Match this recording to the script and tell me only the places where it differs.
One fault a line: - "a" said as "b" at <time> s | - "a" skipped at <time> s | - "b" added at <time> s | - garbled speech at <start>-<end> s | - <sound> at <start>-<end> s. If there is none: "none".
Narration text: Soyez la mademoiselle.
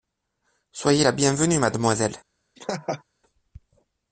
- "bienvenue" added at 1.1 s
- laugh at 2.6-3.0 s